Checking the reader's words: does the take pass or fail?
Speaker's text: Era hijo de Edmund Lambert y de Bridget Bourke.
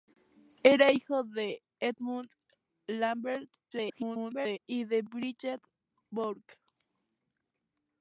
fail